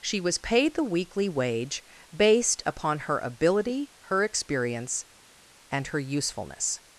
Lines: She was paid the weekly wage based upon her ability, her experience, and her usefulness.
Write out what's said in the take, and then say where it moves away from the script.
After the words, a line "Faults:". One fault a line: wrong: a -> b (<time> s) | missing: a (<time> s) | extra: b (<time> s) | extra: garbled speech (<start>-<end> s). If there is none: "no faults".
She was paid the weekly wage based upon her ability, her experience, and her usefulness.
Faults:
no faults